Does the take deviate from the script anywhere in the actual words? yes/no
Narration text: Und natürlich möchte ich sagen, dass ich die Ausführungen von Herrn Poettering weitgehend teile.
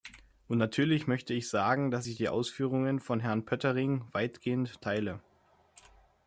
no